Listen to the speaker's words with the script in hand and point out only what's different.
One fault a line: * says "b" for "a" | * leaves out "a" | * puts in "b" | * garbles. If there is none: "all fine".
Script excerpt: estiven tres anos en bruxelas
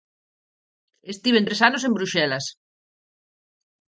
all fine